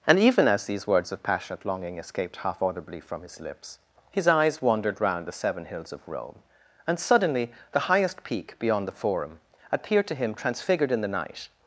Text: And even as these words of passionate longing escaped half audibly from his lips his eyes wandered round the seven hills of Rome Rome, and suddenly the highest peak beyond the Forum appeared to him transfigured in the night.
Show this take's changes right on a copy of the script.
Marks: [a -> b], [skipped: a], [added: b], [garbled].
And even as these words of passionate longing escaped half audibly from his lips his eyes wandered round the seven hills of Rome [skipped: Rome,] and suddenly the highest peak beyond the Forum appeared to him transfigured in the night.